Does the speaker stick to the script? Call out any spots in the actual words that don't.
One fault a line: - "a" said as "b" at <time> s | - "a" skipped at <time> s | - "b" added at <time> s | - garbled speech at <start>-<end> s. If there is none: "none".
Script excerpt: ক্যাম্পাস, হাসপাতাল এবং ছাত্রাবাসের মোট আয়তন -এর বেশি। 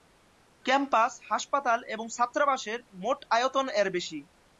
none